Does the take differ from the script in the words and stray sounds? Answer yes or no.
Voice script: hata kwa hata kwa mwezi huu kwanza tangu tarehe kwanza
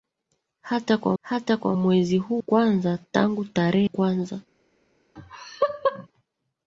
yes